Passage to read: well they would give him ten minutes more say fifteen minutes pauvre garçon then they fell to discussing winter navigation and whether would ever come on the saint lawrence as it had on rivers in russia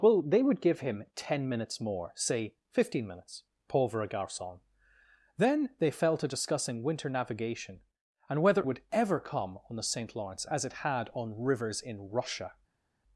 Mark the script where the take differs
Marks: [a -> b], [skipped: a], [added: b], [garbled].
well they would give him ten minutes more say fifteen minutes pauvre garçon then they fell to discussing winter navigation and whether would ever come on the saint lawrence as it had on rivers in russia